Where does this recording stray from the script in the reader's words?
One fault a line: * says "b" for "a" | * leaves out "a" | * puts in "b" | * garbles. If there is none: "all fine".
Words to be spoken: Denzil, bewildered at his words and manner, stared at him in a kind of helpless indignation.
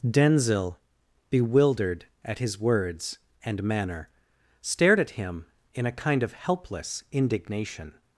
all fine